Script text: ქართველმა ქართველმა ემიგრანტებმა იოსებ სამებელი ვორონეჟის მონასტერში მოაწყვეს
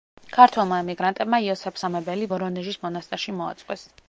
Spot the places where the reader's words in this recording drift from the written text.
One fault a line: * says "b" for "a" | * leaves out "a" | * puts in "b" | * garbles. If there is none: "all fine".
* leaves out "ქართველმა"